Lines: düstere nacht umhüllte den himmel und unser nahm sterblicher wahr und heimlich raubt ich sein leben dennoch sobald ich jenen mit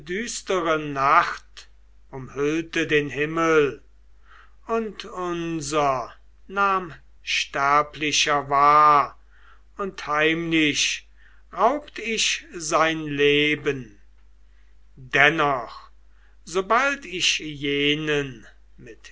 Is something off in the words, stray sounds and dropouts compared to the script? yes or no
no